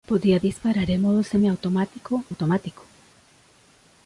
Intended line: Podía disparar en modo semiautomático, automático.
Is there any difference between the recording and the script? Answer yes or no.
no